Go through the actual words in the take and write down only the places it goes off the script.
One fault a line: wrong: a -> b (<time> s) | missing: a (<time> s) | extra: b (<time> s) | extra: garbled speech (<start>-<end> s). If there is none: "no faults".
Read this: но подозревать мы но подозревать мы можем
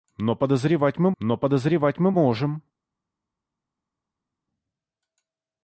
no faults